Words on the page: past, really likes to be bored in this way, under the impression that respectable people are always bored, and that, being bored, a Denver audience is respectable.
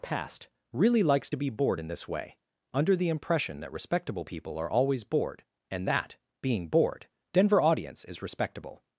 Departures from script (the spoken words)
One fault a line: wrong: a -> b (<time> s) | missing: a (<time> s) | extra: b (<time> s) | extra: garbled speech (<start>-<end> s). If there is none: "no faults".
missing: a (7.1 s)